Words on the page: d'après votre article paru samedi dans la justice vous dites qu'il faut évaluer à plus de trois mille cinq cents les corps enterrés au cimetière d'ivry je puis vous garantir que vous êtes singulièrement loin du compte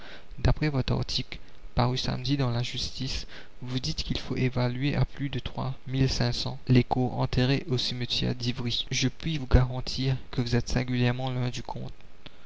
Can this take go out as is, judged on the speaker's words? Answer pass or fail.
pass